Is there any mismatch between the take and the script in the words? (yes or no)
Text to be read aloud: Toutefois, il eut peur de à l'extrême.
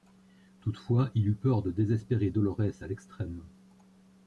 yes